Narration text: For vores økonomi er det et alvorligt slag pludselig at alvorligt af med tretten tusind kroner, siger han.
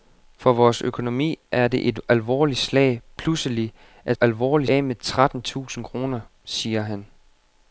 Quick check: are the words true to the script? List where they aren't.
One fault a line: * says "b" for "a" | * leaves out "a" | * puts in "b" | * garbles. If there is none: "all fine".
all fine